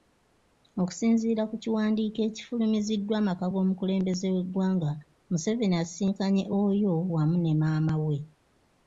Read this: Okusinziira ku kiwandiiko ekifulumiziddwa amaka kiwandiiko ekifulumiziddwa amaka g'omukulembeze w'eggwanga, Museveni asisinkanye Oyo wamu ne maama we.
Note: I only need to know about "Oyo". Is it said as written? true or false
true